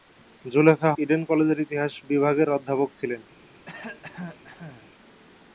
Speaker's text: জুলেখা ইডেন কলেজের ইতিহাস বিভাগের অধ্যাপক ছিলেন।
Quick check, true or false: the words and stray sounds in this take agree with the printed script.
false